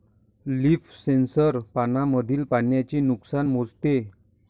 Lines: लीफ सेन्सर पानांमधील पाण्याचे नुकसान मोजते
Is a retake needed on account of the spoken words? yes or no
no